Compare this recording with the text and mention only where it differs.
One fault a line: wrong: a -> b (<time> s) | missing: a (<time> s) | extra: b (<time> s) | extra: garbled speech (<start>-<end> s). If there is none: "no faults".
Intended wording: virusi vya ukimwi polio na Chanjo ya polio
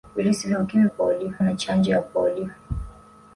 no faults